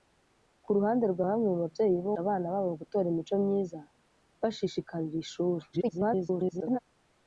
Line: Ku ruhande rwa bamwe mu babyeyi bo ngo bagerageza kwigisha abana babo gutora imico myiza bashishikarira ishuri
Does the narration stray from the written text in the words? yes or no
yes